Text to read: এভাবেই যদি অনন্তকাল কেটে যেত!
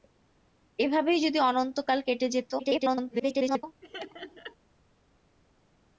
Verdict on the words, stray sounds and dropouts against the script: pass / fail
fail